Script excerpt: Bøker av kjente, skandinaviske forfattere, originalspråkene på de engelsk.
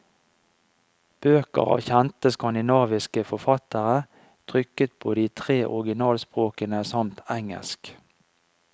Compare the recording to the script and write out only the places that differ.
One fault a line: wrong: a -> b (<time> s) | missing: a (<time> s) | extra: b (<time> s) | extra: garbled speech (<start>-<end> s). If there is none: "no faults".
wrong: originalspråkene -> trykket (4.5 s)
extra: tre originalspråkene samt (5.4 s)